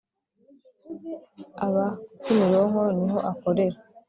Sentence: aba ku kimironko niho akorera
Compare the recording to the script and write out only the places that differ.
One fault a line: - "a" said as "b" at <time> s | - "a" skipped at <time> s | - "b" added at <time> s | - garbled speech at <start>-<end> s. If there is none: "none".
none